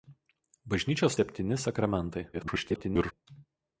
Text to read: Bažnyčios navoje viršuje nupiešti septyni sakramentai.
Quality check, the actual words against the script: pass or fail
fail